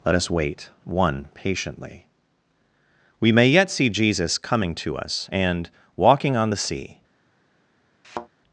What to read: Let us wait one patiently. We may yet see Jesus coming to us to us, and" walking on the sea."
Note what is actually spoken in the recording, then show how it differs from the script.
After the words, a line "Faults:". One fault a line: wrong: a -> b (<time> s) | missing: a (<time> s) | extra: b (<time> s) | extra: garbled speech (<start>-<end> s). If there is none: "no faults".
Let us wait one patiently. We may yet see Jesus coming to us, and" walking on the sea."
Faults:
missing: to us (5.3 s)